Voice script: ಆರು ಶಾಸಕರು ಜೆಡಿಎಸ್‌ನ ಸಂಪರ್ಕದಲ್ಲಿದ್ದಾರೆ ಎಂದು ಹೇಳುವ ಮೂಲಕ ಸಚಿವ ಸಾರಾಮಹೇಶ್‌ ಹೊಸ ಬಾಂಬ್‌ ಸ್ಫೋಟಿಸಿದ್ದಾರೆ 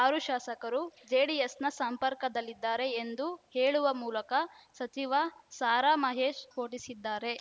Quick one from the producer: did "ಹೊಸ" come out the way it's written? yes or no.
no